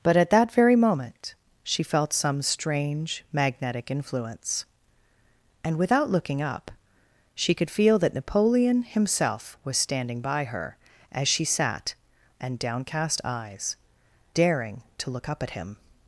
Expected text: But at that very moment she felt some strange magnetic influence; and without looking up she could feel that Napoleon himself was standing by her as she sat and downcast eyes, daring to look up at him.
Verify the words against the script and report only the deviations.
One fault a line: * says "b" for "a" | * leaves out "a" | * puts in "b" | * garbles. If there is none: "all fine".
all fine